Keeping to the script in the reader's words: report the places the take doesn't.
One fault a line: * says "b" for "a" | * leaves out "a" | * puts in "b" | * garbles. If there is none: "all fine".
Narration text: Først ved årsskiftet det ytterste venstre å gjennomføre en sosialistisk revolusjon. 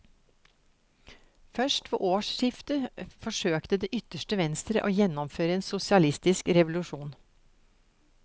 * puts in "forsøkte"